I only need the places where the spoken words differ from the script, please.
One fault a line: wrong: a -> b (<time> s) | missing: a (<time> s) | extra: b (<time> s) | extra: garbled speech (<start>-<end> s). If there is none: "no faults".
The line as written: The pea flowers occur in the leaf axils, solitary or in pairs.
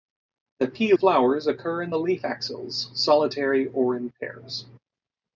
no faults